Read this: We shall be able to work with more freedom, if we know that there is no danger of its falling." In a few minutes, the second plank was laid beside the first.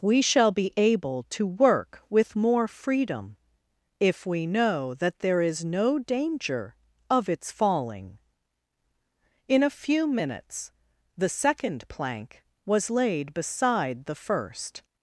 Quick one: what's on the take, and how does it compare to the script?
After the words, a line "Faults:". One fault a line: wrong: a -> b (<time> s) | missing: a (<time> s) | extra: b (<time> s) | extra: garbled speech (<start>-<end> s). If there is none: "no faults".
We shall be able to work with more freedom, if we know that there is no danger of its falling." In a few minutes, the second plank was laid beside the first.
Faults:
no faults